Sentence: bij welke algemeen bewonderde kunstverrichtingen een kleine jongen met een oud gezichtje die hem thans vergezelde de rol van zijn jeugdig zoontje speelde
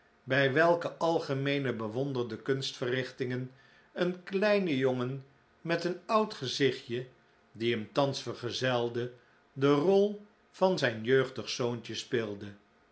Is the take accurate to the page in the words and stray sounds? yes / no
yes